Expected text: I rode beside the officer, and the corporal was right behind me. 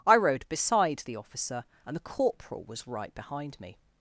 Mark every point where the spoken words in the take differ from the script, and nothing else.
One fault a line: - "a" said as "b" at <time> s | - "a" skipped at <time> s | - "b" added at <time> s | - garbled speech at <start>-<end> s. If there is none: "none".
none